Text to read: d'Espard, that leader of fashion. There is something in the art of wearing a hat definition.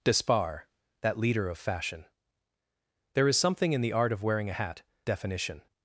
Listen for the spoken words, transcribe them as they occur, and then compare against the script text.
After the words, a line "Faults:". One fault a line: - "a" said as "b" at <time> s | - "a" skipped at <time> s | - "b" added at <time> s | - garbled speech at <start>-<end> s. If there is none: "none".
d'Espard, that leader of fashion. There is something in the art of wearing a hat definition.
Faults:
none